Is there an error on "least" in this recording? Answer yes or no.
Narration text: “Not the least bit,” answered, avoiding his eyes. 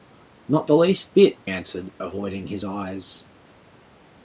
no